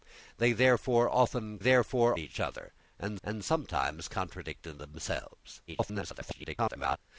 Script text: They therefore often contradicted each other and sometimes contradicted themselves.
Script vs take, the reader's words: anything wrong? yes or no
yes